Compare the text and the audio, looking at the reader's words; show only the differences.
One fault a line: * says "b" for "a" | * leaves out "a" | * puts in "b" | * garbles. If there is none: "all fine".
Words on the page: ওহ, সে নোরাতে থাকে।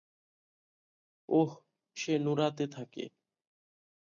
all fine